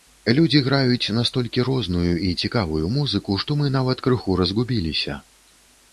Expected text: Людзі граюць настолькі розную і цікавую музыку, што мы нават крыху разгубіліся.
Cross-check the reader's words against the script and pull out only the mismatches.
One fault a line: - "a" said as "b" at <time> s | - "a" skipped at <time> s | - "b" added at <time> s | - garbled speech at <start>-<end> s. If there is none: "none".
none